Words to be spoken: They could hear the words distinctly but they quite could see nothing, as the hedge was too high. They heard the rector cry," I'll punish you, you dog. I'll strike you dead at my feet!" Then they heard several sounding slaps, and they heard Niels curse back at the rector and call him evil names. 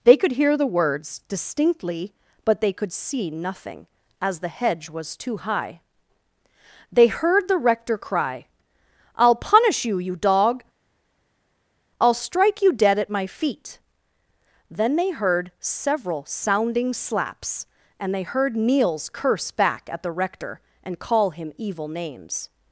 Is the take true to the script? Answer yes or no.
no